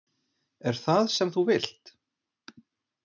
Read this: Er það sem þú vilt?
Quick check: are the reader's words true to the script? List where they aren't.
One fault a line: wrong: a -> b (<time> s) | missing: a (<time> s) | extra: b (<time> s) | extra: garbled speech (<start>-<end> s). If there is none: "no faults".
no faults